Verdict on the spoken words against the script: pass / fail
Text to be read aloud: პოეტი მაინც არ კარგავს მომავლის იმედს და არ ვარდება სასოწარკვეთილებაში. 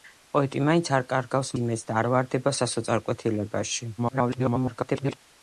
fail